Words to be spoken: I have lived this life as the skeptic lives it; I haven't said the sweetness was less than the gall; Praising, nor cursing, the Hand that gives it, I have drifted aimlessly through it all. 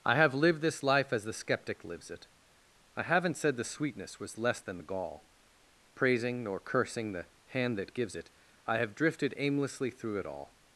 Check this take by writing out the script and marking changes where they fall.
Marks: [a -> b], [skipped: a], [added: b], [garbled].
I have lived this life as the skeptic lives it; I haven't said the sweetness was less than the gall; Praising, nor cursing, the Hand that gives it, I have drifted aimlessly through it all.